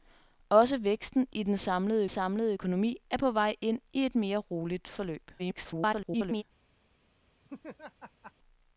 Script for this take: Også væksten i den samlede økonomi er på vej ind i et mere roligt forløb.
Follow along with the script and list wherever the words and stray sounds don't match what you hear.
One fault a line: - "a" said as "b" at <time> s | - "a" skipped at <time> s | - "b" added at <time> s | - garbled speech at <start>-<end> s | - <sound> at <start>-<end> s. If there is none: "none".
- "samlede" added at 2.1 s
- garbled speech at 5.4-6.4 s
- laugh at 7.4-8.3 s